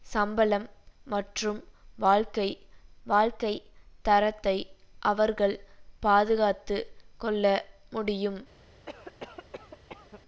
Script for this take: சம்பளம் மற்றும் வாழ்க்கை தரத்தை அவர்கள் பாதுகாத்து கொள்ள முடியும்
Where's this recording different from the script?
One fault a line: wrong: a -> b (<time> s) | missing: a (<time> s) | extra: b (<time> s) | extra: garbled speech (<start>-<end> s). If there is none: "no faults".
extra: வாழ்க்கை (3.1 s)